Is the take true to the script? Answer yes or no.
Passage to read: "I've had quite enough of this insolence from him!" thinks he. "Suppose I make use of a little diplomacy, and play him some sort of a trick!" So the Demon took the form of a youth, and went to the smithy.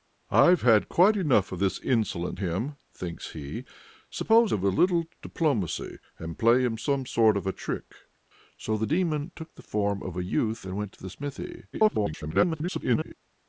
no